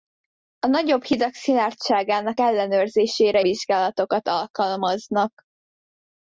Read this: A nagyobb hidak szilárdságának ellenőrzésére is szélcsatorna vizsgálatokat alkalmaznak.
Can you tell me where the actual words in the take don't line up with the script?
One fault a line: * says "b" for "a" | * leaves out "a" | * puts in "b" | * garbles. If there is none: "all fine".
* leaves out "is szélcsatorna"